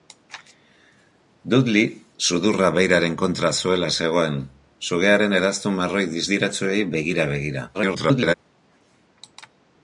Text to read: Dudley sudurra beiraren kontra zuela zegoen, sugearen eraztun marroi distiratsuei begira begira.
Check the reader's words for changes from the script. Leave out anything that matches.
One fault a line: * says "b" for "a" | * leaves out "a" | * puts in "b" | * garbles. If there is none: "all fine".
* garbles